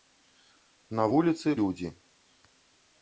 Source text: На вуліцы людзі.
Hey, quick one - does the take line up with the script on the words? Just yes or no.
yes